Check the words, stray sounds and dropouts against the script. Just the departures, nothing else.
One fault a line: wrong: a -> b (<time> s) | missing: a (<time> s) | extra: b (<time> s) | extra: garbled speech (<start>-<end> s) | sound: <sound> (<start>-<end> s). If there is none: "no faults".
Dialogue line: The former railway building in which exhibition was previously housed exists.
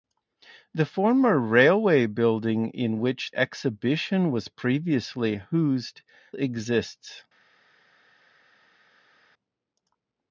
no faults